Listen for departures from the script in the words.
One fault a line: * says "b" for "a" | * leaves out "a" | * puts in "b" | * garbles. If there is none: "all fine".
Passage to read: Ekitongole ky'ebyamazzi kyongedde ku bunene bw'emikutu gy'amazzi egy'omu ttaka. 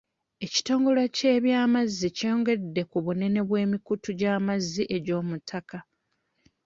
all fine